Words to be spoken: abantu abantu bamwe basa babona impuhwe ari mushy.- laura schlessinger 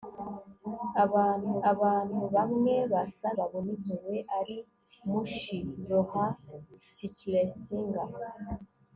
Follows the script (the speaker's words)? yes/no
yes